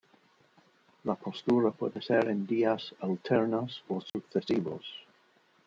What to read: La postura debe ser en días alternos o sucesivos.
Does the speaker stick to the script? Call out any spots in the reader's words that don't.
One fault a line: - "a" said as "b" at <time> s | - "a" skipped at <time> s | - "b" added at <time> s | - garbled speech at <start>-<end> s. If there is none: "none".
- "debe" said as "puede" at 1.7 s